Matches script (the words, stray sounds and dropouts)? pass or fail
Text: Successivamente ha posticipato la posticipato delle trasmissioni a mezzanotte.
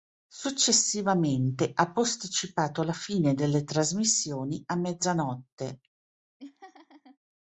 fail